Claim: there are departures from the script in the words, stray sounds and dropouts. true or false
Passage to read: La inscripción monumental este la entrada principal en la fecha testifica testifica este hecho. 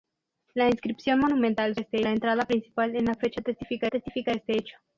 false